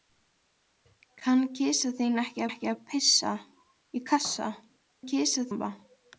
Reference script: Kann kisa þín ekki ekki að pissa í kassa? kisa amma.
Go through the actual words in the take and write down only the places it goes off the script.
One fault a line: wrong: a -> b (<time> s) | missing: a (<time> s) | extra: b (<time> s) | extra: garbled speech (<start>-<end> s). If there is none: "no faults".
no faults